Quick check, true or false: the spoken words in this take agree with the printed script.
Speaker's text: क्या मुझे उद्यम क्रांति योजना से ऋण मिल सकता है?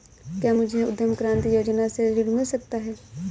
true